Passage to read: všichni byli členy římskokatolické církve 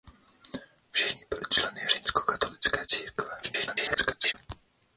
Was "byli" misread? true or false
false